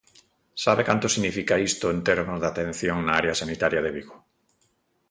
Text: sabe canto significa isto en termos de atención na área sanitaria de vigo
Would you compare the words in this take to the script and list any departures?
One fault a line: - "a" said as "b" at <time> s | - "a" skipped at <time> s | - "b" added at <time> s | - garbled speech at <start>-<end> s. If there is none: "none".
none